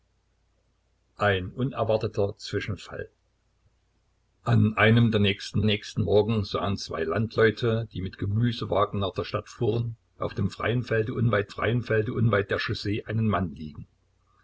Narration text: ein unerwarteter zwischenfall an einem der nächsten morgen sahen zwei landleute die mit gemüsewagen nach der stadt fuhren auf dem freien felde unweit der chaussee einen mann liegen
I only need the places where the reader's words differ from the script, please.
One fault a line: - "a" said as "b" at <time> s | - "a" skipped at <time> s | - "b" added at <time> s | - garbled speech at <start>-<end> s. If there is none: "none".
- "nächsten" added at 5.6 s
- "freien felde unweit" added at 11.5 s